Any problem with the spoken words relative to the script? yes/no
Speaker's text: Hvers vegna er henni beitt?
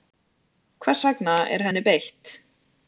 no